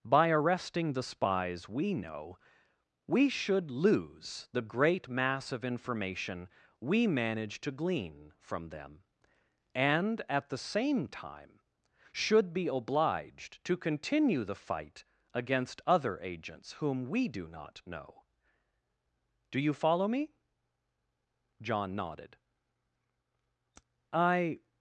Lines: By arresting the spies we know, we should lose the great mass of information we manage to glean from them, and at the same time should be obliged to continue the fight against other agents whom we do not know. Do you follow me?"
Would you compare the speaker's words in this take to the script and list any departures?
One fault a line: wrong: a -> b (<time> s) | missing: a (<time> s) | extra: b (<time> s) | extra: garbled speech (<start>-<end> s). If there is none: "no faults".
extra: John nodded I (21.6 s)